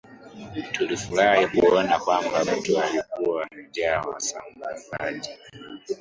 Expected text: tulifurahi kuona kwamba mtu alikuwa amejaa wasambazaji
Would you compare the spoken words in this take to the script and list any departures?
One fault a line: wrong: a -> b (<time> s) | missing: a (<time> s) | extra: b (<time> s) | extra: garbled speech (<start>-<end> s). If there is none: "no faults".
no faults